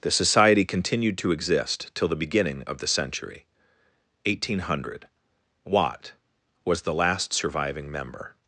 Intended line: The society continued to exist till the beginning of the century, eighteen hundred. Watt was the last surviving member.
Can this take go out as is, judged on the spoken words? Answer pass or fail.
pass